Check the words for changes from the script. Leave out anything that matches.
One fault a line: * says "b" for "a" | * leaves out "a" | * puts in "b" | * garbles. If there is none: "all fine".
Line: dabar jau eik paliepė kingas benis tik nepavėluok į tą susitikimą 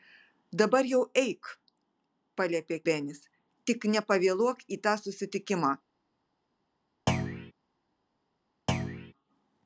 * leaves out "kingas"